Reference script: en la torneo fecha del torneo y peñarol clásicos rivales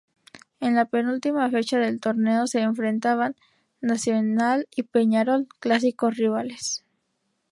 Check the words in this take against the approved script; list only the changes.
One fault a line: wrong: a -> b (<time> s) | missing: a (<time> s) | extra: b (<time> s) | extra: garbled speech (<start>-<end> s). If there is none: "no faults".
wrong: torneo -> penúltima (0.8 s)
extra: se enfrentaban nacional (2.5 s)